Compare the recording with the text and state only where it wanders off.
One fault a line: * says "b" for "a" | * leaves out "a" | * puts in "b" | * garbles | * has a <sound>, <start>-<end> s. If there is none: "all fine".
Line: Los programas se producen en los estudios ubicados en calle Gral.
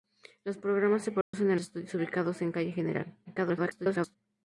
* has a dropout, 1.2-1.3 s
* leaves out "los"
* garbles